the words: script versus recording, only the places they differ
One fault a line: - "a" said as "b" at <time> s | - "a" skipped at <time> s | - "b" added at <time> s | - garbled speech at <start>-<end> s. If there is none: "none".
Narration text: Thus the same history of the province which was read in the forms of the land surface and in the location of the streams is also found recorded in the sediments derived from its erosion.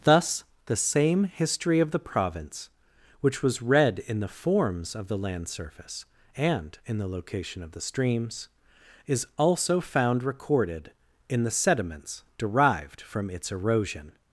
none